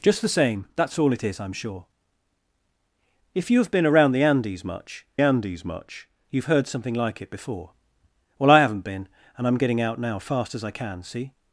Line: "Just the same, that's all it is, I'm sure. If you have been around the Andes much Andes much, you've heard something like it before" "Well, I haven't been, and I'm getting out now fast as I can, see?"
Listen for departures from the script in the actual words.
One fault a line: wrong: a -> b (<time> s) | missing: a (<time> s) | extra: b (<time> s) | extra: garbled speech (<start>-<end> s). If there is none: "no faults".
no faults